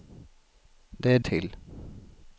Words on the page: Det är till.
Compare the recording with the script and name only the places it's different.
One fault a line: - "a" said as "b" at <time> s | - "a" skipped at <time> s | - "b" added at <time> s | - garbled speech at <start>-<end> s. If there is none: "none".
none